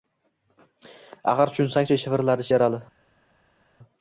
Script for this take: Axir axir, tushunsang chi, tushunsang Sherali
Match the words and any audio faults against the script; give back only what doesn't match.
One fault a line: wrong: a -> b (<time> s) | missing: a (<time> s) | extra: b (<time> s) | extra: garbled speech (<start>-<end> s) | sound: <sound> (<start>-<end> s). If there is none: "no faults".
missing: axir (1.5 s)
wrong: tushunsang -> shivirladi (2.0 s)